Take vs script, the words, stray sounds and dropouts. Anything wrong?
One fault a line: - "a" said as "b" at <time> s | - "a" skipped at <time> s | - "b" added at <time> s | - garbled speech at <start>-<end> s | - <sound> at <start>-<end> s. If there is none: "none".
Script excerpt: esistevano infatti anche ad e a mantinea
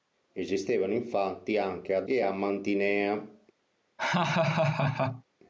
- laugh at 4.0-5.2 s